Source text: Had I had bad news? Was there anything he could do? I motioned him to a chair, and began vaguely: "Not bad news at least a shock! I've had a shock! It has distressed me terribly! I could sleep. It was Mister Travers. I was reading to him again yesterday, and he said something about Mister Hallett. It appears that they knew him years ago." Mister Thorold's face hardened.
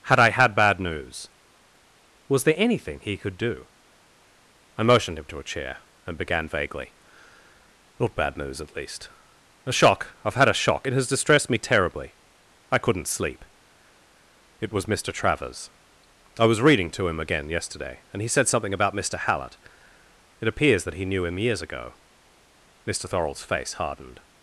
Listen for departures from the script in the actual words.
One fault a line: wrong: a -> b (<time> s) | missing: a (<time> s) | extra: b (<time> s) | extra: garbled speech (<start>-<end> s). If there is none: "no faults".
wrong: could -> couldn't (12.8 s)
wrong: they -> he (20.9 s)